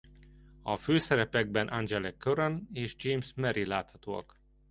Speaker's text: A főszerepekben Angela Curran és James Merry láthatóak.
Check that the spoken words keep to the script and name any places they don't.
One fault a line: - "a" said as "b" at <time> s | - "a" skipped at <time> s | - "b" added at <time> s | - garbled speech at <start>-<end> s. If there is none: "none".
none